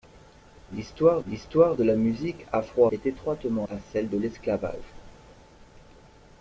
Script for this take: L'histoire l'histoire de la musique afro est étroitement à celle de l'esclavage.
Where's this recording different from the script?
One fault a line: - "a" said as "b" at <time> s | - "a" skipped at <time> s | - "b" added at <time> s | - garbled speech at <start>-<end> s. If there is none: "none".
none